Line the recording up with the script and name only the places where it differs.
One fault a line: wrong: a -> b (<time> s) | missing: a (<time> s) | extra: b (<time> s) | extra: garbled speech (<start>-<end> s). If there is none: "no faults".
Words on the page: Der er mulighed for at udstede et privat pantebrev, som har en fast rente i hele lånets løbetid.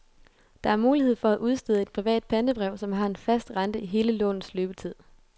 no faults